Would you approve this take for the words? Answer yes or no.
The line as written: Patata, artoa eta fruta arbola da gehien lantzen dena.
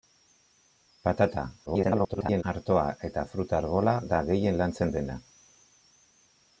no